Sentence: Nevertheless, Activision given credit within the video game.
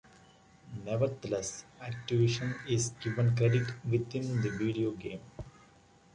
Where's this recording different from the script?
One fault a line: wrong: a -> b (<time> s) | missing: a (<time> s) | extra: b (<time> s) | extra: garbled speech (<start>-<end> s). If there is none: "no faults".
extra: is (2.7 s)